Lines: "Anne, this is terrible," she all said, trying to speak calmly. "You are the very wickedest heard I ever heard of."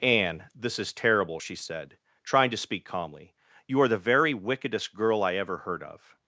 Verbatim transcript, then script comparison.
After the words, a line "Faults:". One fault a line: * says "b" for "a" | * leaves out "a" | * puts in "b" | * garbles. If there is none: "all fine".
"Anne, this is terrible," she said, trying to speak calmly. "You are the very wickedest girl I ever heard of."
Faults:
* leaves out "all"
* says "girl" for "heard"